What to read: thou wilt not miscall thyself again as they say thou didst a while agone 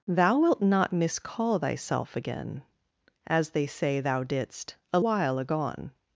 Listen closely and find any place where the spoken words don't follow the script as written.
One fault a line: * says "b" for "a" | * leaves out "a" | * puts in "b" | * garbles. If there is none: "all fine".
all fine